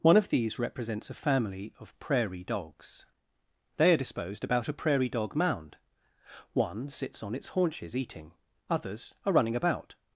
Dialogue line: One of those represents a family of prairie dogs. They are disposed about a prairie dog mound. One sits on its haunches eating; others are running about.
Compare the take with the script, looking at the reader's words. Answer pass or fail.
fail